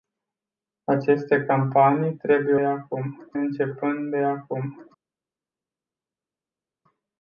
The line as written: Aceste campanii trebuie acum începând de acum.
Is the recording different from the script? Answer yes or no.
no